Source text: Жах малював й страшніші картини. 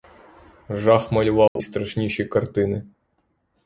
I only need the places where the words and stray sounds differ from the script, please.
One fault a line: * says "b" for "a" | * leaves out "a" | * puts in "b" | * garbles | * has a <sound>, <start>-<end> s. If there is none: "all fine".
* has a dropout, 1.5-1.6 s